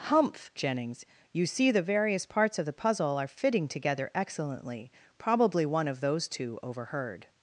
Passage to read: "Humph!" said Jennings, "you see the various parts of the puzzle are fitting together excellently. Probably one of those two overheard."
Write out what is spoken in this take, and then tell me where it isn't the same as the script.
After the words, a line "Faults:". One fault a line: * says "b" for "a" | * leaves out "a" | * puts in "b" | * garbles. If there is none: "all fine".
"Humph!" Jennings, "you see the various parts of the puzzle are fitting together excellently. Probably one of those two overheard."
Faults:
* leaves out "said"